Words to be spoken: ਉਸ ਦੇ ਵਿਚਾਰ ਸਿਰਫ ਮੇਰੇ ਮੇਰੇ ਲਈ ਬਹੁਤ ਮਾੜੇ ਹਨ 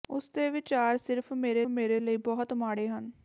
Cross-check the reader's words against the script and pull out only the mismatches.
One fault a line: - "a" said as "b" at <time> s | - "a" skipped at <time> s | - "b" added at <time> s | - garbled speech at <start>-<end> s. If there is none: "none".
none